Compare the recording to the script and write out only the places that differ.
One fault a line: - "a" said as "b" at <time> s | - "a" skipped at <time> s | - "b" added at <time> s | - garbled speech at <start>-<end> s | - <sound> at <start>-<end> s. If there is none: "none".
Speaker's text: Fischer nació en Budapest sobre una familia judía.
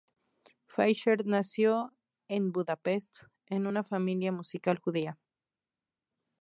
- "sobre" said as "en" at 3.5 s
- "musical" added at 4.3 s